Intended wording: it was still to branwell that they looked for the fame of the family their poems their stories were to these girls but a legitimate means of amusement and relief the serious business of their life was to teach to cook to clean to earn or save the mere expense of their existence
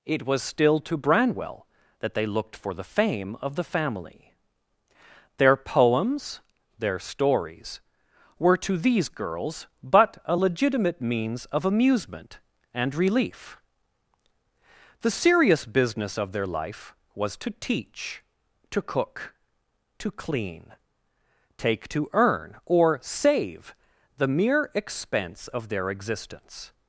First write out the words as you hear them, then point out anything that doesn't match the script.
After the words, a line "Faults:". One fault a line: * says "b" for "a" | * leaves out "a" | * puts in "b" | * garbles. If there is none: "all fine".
it was still to branwell that they looked for the fame of the family their poems their stories were to these girls but a legitimate means of amusement and relief the serious business of their life was to teach to cook to clean take to earn or save the mere expense of their existence
Faults:
* puts in "take"